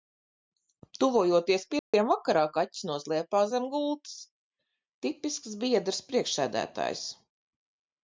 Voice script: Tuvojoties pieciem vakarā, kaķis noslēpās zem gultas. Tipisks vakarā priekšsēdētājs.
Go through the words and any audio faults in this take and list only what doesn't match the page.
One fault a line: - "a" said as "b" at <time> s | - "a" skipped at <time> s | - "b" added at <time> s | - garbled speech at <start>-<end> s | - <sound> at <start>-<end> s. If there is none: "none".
- dropout at 1.8-1.9 s
- "vakarā" said as "biedrs" at 5.7 s